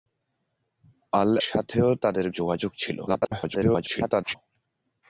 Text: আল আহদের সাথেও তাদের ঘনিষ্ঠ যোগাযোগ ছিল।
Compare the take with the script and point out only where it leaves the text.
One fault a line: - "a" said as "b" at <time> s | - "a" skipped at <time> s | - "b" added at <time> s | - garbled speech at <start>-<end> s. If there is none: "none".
- "আহদের" skipped at 1.3 s
- "ঘনিষ্ঠ" skipped at 2.3 s
- garbled speech at 3.1-4.4 s